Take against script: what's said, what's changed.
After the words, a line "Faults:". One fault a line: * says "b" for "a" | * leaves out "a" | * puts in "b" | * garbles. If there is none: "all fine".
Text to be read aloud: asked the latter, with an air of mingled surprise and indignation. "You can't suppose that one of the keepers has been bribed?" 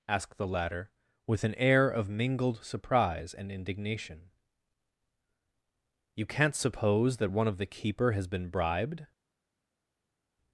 asked the latter, with an air of mingled surprise and indignation. "You can't suppose that one of the keeper has been bribed?"
Faults:
* says "keeper" for "keepers"